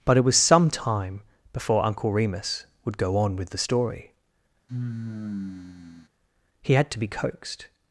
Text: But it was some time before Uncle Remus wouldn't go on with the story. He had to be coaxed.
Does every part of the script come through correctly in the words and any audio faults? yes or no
no